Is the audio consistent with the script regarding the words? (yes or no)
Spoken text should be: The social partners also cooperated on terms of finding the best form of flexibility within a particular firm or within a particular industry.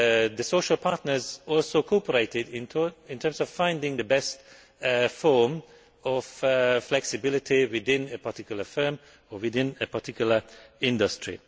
no